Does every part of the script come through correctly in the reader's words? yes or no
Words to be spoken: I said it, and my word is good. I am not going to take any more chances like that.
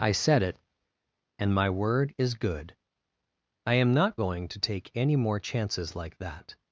yes